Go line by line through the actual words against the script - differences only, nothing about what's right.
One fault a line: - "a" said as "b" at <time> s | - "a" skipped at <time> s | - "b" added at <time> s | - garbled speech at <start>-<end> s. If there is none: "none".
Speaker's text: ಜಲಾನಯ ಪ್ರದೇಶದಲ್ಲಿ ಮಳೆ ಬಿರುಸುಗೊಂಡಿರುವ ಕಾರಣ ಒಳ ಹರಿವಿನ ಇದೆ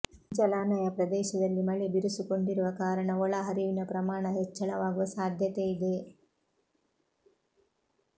- "ಪ್ರಮಾಣ ಹೆಚ್ಚಳವಾಗುವ ಸಾಧ್ಯತೆ" added at 3.9 s